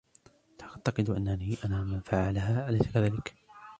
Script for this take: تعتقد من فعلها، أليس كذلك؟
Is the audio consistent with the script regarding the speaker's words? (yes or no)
no